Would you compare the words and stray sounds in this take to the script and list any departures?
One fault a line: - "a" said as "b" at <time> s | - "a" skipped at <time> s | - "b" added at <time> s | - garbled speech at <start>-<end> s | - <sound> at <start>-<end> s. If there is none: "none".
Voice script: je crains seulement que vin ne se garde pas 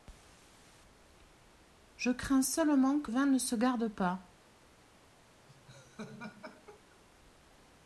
- laugh at 5.5-7.0 s